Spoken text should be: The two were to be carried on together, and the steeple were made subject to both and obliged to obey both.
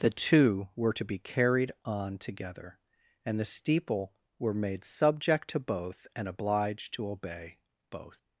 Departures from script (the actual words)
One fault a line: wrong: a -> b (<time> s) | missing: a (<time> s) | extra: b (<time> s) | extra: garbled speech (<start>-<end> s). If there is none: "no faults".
no faults